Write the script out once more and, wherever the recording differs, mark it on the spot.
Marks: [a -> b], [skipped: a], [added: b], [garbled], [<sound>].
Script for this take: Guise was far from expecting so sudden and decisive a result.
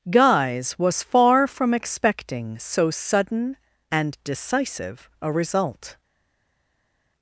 Guise was far from expecting so sudden and decisive a result.